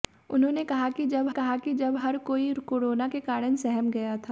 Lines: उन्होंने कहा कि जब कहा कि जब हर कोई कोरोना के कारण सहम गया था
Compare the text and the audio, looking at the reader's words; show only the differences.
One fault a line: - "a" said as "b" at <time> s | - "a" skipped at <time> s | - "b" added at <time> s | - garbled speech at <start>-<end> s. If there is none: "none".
none